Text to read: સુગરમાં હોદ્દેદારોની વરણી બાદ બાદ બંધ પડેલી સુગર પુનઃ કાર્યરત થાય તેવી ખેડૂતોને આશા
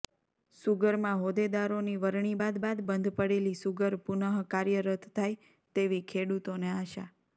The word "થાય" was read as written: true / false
true